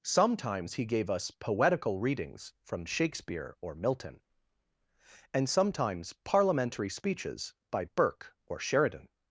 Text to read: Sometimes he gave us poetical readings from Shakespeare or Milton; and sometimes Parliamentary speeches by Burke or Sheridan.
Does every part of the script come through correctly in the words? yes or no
yes